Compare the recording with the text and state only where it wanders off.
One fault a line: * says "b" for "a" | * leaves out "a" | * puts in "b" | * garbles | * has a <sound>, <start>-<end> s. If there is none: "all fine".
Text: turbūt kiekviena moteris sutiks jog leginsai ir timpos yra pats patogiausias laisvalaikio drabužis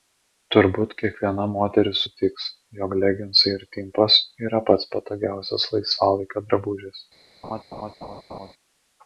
* has a laugh, 7.4-8.5 s